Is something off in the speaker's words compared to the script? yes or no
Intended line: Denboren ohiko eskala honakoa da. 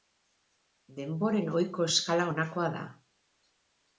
no